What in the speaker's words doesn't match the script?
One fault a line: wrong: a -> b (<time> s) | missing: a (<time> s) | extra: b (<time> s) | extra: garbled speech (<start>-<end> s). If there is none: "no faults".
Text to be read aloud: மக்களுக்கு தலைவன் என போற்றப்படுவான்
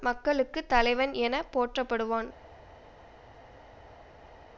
no faults